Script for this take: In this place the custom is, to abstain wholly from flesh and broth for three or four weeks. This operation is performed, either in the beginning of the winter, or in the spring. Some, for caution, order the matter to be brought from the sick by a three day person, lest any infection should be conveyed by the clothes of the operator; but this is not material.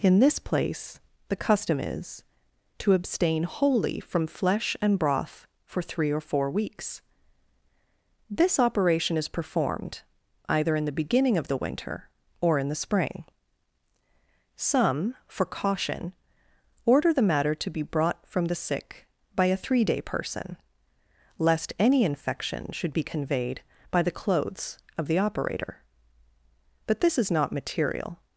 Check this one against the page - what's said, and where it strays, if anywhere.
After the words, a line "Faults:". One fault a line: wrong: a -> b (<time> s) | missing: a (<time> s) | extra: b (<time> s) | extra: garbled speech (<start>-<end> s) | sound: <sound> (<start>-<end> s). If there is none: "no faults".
In this place the custom is, to abstain wholly from flesh and broth for three or four weeks. This operation is performed, either in the beginning of the winter, or in the spring. Some, for caution, order the matter to be brought from the sick by a three day person, lest any infection should be conveyed by the clothes of the operator; but this is not material.
Faults:
no faults